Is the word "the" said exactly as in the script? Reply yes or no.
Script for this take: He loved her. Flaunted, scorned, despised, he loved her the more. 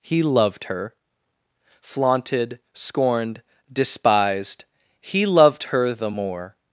yes